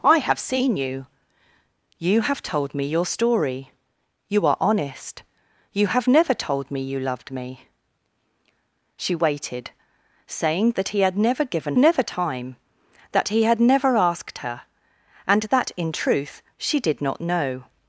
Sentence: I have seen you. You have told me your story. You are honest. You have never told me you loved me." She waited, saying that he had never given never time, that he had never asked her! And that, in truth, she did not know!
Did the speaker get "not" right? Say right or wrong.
right